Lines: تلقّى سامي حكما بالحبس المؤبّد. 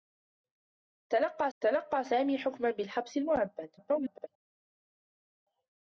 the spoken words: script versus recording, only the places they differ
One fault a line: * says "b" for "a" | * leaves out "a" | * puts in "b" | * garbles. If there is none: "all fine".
* puts in "تلقّى"
* garbles